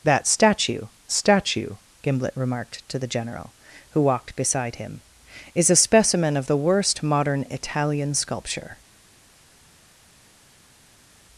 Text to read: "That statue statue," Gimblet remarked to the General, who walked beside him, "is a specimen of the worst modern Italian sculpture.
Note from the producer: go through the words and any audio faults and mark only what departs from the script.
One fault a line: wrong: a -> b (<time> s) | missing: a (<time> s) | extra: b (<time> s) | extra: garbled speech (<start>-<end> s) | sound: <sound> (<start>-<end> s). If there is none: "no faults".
no faults